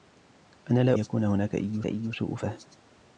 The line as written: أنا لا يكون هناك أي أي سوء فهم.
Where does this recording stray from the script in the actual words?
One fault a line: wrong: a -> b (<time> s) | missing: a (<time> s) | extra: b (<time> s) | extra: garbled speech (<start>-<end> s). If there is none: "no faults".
no faults